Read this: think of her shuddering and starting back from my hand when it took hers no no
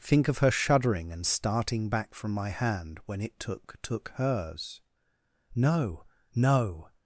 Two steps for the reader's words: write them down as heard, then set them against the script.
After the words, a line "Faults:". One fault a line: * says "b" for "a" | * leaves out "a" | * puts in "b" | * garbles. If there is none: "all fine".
think of her shuddering and starting back from my hand when it took took hers no no
Faults:
* puts in "took"